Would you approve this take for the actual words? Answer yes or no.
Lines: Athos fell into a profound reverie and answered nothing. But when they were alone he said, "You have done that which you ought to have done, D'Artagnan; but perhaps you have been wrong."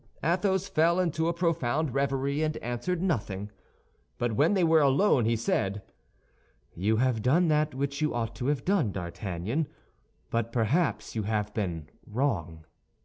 yes